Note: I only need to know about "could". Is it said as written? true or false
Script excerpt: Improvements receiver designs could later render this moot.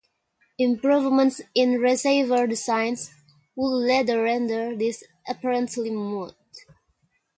false